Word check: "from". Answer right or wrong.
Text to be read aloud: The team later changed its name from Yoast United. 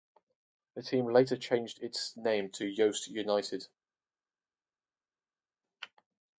wrong